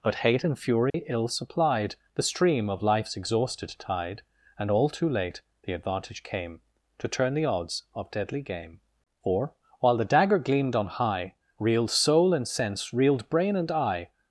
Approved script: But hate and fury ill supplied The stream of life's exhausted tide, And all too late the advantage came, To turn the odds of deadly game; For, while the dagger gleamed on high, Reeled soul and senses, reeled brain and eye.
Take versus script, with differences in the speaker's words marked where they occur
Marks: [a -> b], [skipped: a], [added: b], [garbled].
But hate and fury ill supplied The stream of life's exhausted tide, And all too late the advantage came, To turn the odds of deadly game; For, while the dagger gleamed on high, Reeled soul and [senses, -> sense] reeled brain and eye.